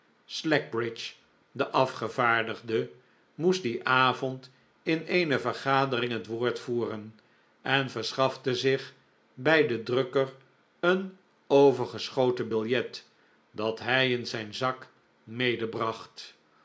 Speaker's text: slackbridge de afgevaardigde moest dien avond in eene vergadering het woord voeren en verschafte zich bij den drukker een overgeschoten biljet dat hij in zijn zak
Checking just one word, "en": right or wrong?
right